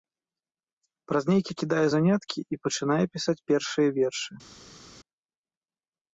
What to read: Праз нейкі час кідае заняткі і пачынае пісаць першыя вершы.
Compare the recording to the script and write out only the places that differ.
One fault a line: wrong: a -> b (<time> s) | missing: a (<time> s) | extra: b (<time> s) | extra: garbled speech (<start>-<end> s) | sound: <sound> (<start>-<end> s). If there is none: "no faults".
missing: час (1.5 s)